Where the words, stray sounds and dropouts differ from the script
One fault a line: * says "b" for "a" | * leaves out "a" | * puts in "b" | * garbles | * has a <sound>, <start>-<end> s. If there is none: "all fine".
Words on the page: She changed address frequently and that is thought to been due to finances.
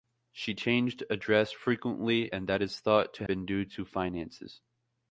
all fine